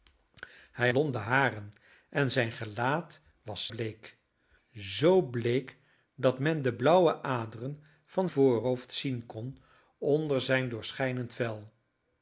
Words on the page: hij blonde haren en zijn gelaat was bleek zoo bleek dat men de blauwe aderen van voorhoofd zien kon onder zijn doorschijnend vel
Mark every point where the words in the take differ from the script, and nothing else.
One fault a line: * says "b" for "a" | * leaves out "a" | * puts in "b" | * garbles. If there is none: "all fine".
all fine